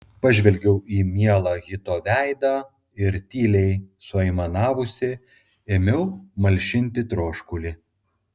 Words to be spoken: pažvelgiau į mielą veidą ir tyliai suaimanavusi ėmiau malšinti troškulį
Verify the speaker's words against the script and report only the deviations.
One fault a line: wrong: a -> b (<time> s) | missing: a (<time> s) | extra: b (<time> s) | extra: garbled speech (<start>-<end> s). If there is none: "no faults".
extra: hito (1.6 s)